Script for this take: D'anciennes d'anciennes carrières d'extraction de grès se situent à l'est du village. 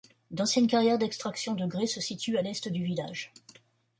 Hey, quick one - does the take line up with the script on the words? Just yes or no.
no